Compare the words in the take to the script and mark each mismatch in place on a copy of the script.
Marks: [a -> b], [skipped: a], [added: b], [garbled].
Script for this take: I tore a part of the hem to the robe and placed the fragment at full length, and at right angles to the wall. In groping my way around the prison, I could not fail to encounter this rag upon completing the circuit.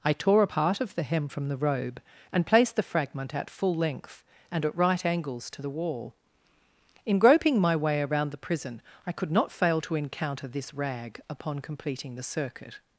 I tore a part of the hem [to -> from] the robe and placed the fragment at full length, and at right angles to the wall. In groping my way around the prison, I could not fail to encounter this rag upon completing the circuit.